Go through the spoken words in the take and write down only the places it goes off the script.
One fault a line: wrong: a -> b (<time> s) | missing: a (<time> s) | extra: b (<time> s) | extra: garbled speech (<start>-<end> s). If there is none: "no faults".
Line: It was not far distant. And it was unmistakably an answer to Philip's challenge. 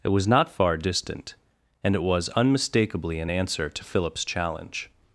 no faults